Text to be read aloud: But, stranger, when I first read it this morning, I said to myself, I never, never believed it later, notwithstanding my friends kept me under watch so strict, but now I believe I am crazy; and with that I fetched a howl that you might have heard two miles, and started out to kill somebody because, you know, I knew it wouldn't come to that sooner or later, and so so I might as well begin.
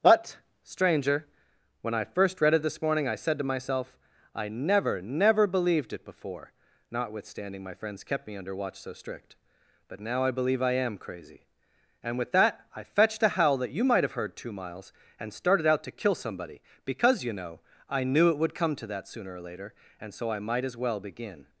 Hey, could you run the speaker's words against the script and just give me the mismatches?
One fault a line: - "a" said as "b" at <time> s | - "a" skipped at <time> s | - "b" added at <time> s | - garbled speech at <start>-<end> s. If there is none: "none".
- "later" said as "before" at 6.0 s
- "wouldn't" said as "would" at 18.4 s
- "so" skipped at 20.3 s